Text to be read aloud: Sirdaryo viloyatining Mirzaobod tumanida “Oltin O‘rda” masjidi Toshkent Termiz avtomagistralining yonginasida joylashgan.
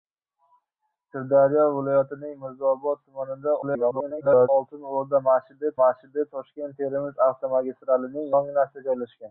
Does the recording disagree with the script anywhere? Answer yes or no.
yes